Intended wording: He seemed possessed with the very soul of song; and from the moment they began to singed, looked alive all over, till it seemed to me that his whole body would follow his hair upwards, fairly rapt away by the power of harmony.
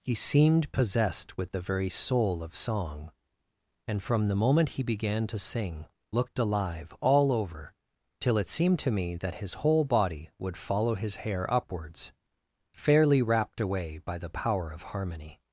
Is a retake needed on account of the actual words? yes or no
yes